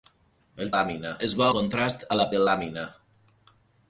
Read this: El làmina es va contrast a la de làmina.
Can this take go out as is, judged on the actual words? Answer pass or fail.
pass